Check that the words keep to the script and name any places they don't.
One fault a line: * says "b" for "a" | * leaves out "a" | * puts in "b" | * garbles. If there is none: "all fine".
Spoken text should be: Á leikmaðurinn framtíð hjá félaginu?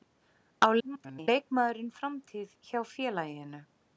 * garbles